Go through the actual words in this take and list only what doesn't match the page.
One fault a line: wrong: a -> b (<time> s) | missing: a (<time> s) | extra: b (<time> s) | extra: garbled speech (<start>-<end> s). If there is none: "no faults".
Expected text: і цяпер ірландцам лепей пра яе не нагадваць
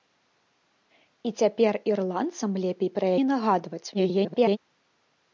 missing: яе (3.1 s)
extra: garbled speech (3.9-4.6 s)